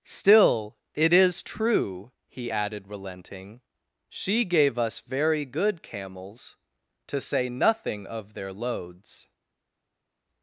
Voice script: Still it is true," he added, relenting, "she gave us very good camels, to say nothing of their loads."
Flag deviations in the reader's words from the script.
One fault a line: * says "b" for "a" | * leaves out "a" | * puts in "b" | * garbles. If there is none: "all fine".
all fine